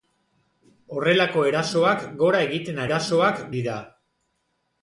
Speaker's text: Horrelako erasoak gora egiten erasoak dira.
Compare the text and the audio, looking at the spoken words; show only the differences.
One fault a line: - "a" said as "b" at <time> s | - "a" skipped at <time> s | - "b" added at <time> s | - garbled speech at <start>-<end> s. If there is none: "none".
none